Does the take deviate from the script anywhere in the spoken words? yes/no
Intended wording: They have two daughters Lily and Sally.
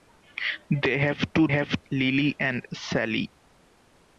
yes